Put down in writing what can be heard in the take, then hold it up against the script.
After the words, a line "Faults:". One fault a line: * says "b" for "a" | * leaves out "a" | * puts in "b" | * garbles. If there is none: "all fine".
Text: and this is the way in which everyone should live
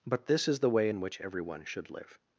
but this is the way in which everyone should live
Faults:
* says "but" for "and"